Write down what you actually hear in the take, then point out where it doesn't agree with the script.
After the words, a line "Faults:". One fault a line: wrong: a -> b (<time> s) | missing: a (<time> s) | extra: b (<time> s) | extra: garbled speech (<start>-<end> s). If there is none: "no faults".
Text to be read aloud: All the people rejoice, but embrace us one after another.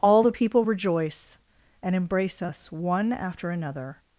All the people rejoice, and embrace us one after another.
Faults:
wrong: but -> and (1.8 s)